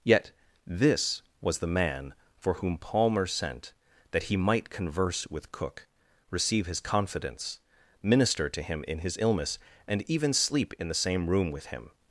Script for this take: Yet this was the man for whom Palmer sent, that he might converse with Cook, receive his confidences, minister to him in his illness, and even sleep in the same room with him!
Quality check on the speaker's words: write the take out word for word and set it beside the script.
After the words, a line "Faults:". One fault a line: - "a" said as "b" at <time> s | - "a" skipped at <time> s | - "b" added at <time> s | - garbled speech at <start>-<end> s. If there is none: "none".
Yet this was the man for whom Palmer sent, that he might converse with Cook, receive his confidence, minister to him in his illness, and even sleep in the same room with him!
Faults:
- "confidences" said as "confidence" at 6.8 s